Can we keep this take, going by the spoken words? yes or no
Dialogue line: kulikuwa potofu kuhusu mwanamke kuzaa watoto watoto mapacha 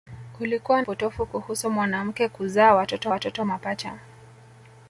yes